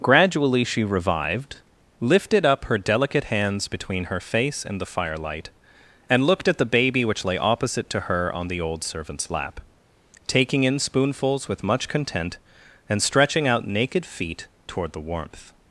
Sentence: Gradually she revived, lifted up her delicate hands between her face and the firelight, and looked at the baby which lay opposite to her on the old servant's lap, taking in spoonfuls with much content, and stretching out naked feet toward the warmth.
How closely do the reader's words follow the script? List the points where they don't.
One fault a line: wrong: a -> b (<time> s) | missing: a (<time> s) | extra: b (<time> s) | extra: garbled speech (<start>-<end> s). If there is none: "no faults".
no faults